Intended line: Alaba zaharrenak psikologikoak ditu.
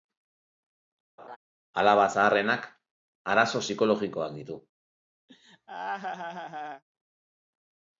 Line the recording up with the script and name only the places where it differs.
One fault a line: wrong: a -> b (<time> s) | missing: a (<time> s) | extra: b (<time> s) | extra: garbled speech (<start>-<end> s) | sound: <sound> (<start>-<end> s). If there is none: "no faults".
sound: laugh (1.2-1.4 s)
extra: arazo (3.3 s)
sound: laugh (5.3-6.8 s)